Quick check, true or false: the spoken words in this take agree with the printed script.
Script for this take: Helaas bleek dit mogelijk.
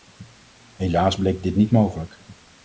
false